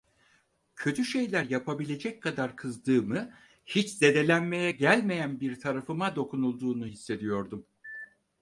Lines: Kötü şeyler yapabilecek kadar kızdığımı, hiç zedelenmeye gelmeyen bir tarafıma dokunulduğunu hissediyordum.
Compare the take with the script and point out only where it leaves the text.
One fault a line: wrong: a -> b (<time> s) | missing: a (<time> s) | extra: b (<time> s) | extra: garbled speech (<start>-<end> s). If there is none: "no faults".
no faults